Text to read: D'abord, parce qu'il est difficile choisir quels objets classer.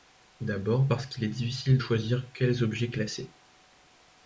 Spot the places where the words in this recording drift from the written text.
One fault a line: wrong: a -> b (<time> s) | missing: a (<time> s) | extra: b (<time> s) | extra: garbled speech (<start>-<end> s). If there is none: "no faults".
no faults